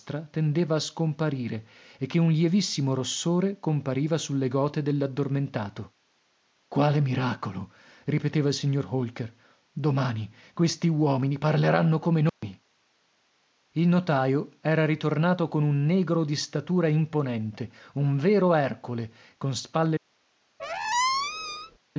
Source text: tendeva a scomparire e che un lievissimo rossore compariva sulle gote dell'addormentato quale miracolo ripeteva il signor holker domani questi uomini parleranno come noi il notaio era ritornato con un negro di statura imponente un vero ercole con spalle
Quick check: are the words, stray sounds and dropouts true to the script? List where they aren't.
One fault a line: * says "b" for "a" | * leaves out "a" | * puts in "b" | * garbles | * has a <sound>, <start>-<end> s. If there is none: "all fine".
* has a dropout, 12.3-12.4 s
* has a squeak, 20.6-21.8 s